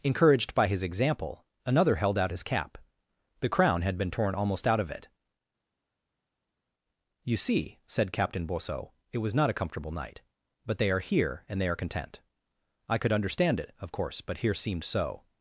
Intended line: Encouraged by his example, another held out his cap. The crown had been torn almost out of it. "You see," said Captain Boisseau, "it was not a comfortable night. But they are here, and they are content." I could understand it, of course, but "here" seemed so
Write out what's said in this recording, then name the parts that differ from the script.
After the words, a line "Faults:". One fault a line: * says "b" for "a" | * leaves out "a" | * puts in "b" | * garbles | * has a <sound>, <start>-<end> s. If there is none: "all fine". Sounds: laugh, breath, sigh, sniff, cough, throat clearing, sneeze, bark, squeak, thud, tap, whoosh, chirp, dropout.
Encouraged by his example, another held out his cap. The crown had been torn almost out of it. "You see," said Captain Boisseau, "it was not a comfortable night. But they are here, and they are content." I could understand it, of course, but "here" seemed so
Faults:
all fine